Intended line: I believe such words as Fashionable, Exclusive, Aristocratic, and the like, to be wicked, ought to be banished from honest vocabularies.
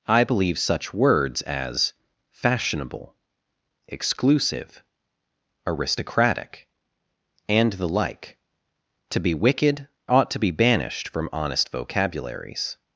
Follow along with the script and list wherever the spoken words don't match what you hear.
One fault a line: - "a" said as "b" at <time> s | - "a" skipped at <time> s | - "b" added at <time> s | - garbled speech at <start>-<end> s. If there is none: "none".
none